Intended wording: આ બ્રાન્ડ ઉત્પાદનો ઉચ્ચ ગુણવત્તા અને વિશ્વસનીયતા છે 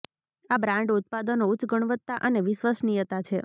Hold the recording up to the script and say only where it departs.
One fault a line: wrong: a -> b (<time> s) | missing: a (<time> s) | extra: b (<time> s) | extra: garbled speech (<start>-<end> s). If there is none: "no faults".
no faults